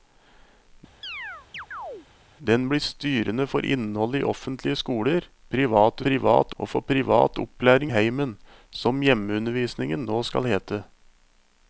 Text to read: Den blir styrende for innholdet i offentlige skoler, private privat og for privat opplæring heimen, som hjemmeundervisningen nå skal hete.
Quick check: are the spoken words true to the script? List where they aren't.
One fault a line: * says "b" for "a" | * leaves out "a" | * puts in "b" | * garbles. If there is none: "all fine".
all fine